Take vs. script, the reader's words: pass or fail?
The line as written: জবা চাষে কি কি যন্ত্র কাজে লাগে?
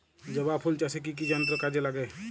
fail